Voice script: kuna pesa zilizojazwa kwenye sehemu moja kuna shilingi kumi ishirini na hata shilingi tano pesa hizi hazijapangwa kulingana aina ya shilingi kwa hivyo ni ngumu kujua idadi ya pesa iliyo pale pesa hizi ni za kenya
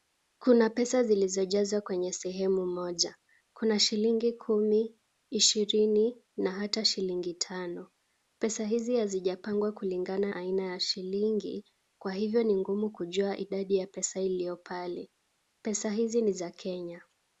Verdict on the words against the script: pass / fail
pass